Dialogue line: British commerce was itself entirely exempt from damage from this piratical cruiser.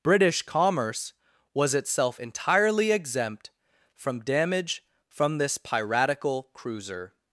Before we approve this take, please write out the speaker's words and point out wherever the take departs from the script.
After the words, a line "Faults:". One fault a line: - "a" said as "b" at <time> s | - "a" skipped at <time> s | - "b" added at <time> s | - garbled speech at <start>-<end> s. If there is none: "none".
British commerce was itself entirely exempt from damage from this piratical cruiser.
Faults:
none